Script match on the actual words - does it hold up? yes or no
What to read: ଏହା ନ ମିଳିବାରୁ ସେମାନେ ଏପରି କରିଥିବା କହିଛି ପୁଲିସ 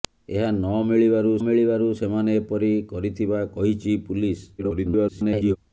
no